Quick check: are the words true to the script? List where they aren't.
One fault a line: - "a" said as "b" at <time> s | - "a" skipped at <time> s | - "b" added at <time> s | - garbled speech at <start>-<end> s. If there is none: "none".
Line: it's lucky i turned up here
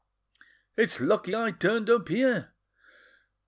none